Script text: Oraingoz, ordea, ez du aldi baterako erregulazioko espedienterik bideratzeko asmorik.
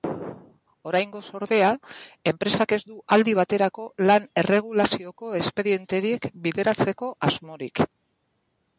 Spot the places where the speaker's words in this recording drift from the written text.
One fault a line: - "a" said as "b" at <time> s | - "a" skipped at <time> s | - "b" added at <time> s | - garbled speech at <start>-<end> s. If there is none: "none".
- "enpresak" added at 2.3 s
- "lan" added at 4.1 s